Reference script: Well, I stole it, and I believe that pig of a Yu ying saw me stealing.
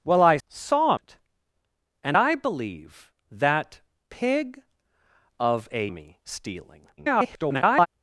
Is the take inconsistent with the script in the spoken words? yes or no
yes